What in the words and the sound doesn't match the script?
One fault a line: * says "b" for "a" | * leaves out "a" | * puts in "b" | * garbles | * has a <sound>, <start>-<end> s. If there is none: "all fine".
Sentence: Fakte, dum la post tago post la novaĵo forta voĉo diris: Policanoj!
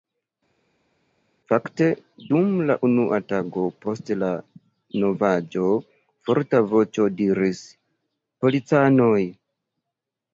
* says "unua" for "post"